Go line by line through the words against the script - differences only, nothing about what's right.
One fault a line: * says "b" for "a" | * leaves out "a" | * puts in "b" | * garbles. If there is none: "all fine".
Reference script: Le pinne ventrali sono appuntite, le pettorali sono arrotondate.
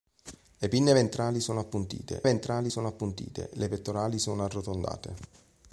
* puts in "ventrali sono appuntite"